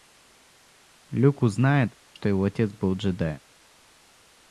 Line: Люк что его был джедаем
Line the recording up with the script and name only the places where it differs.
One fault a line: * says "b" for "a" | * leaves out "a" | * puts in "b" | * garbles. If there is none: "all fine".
* puts in "узнает"
* puts in "отец"